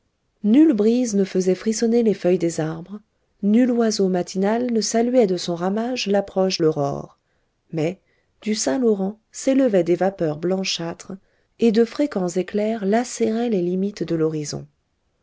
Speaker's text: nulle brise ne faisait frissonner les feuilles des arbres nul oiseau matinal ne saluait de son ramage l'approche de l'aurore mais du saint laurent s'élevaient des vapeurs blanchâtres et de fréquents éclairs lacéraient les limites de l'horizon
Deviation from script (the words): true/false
true